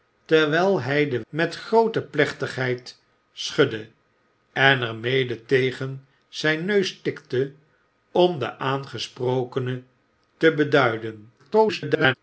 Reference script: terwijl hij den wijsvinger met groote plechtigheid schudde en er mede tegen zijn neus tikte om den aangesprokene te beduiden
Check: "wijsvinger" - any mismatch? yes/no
yes